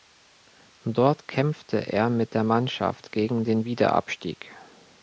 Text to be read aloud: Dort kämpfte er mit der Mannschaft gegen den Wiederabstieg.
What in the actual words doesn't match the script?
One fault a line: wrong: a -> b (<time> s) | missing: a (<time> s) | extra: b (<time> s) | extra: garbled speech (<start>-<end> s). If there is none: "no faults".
no faults